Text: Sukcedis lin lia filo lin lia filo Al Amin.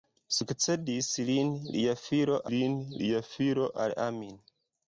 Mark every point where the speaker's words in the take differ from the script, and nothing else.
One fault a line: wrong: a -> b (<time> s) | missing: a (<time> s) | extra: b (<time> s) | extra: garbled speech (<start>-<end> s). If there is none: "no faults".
no faults